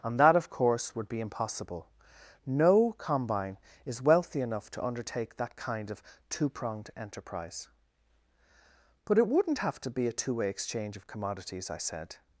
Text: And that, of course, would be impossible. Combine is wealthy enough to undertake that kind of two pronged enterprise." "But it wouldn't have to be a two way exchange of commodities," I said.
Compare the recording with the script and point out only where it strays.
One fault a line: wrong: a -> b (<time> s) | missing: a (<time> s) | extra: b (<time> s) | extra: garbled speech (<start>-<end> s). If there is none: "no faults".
extra: No (2.5 s)